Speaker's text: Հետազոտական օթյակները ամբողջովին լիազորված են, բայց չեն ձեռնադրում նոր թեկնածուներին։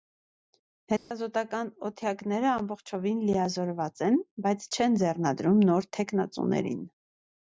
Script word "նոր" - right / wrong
right